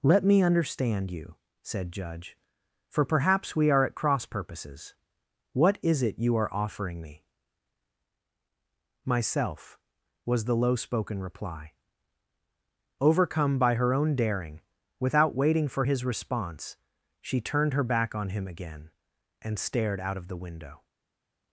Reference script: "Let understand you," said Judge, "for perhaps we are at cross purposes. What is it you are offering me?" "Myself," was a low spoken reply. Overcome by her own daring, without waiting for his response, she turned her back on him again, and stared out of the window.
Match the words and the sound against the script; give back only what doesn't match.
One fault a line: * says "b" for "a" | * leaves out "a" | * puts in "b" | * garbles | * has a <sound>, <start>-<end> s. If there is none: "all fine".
* puts in "me"
* says "the" for "a"